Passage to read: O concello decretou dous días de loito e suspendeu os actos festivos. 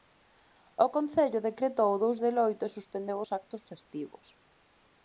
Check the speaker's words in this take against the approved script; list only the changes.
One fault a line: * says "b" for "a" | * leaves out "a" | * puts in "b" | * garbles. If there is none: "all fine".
* leaves out "días"